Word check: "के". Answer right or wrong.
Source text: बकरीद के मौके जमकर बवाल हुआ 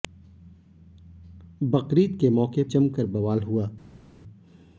right